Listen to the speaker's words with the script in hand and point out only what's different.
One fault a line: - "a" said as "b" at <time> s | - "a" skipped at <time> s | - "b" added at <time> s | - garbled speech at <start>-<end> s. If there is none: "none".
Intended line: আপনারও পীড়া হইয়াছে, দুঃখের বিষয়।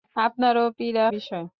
- "হইয়াছে দুঃখের" skipped at 1.1 s